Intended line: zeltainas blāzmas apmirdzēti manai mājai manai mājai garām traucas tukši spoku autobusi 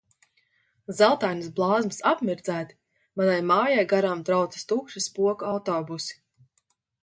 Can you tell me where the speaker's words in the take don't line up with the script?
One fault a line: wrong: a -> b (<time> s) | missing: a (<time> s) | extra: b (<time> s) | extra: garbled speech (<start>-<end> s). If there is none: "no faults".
missing: manai mājai (3.9 s)